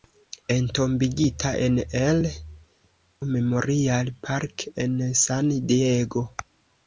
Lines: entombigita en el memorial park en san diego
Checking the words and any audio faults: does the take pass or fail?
pass